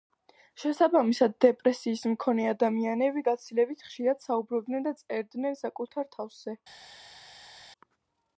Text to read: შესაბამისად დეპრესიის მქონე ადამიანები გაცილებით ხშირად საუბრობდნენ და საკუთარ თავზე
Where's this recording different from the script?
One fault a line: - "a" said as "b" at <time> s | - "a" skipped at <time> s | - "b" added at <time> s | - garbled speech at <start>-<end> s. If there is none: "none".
- "წერდნენ" added at 5.0 s